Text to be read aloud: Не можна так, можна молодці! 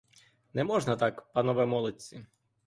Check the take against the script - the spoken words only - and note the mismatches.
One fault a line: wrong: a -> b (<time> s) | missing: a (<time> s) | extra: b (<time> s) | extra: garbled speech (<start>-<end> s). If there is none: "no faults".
wrong: можна -> панове (1.3 s)